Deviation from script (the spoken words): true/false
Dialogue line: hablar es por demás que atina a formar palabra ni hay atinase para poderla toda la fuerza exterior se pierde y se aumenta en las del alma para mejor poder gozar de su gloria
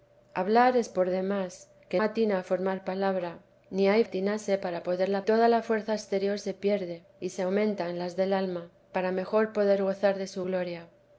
false